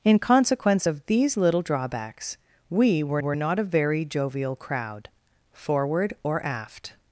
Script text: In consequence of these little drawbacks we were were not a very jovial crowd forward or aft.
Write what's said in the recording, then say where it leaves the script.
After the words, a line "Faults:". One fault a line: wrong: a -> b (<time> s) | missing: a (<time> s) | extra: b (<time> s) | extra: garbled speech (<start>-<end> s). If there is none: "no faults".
In consequence of these little drawbacks we were were not a very jovial crowd forward or aft.
Faults:
no faults